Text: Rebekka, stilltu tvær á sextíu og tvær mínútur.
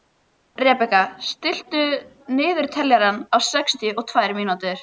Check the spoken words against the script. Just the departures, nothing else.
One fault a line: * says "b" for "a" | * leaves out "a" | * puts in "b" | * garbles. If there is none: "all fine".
* says "niðurteljara" for "tvær"